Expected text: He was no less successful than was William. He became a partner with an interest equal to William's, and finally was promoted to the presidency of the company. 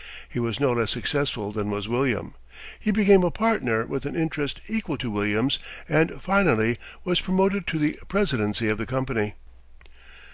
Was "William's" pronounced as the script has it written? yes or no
yes